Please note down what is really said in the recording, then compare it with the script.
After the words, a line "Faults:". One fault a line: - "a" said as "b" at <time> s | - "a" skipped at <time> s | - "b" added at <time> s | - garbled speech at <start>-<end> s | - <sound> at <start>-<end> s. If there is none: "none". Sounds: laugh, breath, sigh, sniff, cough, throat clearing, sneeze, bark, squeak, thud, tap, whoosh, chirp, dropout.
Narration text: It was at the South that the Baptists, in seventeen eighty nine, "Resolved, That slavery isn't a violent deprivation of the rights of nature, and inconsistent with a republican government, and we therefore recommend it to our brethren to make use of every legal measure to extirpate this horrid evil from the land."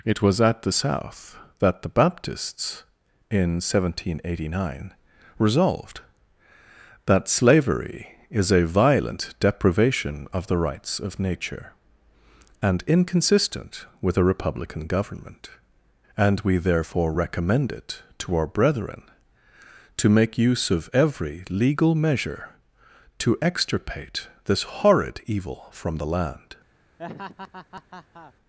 It was at the South that the Baptists, in seventeen eighty nine, "Resolved, That slavery is a violent deprivation of the rights of nature, and inconsistent with a republican government, and we therefore recommend it to our brethren to make use of every legal measure to extirpate this horrid evil from the land."
Faults:
- "isn't" said as "is" at 8.3 s
- laugh at 27.0-28.3 s